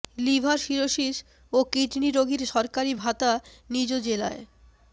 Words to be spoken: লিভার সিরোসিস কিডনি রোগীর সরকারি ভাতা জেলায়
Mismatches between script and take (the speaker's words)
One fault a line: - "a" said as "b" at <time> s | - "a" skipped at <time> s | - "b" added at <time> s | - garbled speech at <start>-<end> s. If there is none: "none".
- "ও" added at 1.5 s
- "নিজ" added at 3.7 s